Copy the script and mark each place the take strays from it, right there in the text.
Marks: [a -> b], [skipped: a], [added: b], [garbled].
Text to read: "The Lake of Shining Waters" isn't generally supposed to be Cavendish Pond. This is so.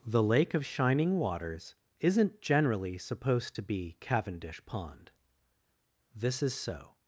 "The Lake of Shining Waters" isn't generally supposed to be Cavendish Pond. This is so.